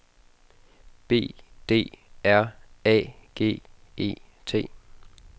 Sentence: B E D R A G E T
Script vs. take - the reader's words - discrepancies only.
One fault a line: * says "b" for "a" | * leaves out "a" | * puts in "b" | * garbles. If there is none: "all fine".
* leaves out "E"